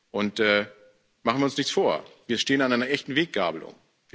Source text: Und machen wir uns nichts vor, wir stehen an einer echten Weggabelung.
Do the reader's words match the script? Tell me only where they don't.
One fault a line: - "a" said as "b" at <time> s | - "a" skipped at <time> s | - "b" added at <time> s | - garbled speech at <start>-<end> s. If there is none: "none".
none